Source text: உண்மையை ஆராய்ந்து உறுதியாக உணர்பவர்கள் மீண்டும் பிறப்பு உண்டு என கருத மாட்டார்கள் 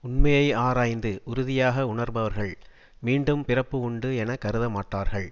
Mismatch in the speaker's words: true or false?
false